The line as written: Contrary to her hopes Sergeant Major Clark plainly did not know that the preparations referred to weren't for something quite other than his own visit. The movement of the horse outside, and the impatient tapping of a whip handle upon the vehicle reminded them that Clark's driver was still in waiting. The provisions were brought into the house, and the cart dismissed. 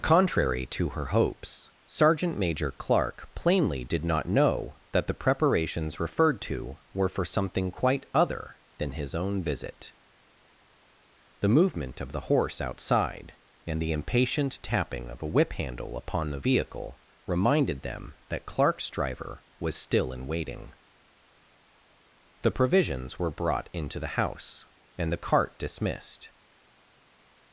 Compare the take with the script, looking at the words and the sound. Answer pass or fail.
fail